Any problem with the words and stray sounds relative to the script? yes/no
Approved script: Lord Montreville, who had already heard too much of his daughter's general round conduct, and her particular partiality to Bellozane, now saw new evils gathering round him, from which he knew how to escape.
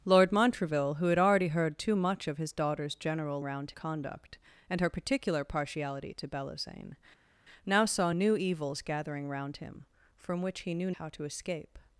no